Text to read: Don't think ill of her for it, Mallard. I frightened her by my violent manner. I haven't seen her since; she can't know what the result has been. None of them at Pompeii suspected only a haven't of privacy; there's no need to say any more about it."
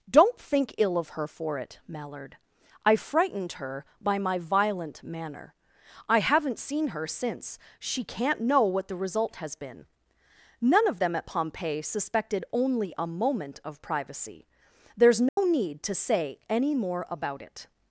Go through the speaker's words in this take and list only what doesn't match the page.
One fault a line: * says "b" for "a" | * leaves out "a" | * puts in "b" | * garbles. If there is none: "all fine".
* says "moment" for "haven't"